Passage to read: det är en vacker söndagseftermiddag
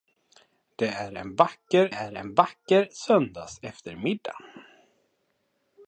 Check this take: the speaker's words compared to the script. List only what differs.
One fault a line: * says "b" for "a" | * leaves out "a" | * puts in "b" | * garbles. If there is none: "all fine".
* puts in "är en vacker"